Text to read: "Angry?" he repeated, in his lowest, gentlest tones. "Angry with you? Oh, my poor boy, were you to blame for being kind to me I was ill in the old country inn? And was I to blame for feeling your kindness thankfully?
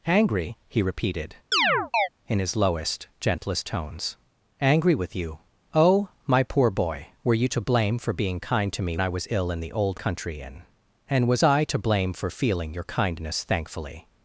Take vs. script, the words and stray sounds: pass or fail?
fail